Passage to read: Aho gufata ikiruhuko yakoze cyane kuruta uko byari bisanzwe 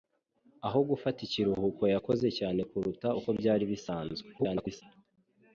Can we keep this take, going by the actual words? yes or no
no